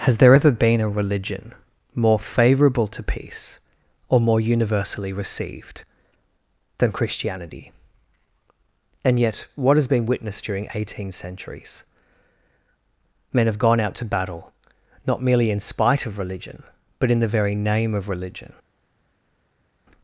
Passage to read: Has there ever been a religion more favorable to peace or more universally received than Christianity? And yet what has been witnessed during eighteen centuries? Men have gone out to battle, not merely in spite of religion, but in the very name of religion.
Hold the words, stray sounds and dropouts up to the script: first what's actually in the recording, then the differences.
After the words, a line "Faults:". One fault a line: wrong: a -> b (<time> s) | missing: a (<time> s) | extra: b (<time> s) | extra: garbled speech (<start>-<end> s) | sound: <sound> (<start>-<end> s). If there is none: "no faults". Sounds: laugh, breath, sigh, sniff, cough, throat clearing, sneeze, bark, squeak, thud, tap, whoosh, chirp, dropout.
Has there ever been a religion more favorable to peace or more universally received than Christianity? And yet what has been witnessed during eighteen centuries? Men have gone out to battle, not merely in spite of religion, but in the very name of religion.
Faults:
no faults